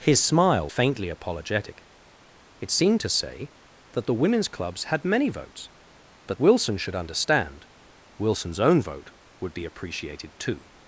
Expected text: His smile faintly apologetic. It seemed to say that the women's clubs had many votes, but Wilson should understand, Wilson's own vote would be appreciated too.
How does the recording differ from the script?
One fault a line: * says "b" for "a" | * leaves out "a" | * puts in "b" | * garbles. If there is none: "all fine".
all fine